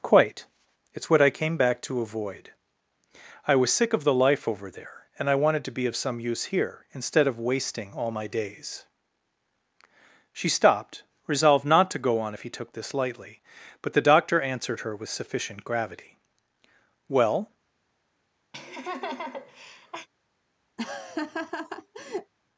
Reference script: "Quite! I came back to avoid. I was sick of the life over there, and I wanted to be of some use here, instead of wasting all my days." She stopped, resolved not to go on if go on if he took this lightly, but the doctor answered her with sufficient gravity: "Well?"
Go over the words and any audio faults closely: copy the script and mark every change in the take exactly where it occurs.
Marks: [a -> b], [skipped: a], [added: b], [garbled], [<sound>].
"Quite! [added: It's what] I came back to avoid. I was sick of the life over there, and I wanted to be of some use here, instead of wasting all my days." She stopped, resolved not to go on if [skipped: go on if] he took this lightly, but the doctor answered her with sufficient gravity: "Well?" [laugh] [laugh]